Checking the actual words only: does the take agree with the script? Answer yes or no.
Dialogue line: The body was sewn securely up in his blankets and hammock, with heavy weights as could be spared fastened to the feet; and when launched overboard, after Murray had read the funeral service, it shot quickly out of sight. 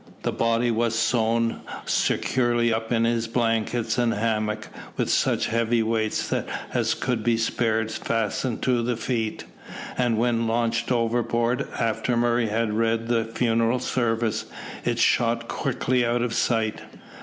no